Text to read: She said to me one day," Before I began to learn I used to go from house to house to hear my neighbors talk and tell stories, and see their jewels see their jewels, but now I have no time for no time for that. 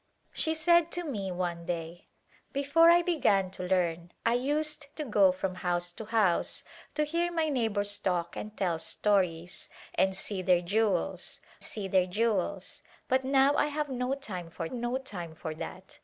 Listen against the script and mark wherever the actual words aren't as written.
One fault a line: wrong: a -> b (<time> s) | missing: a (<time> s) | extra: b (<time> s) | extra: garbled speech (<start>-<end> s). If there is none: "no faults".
no faults